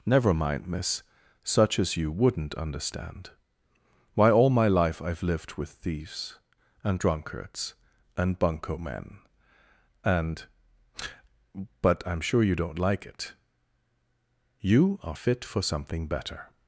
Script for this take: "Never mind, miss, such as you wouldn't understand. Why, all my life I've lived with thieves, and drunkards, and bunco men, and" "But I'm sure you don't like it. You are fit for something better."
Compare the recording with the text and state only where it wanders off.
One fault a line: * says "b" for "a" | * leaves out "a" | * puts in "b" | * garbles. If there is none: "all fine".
all fine